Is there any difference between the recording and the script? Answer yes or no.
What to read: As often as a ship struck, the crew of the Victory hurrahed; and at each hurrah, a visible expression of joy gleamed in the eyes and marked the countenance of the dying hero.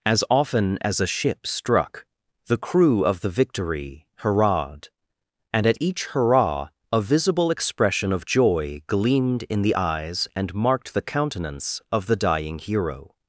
no